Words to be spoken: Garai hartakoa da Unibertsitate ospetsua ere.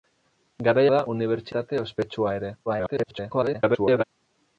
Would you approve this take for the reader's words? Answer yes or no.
no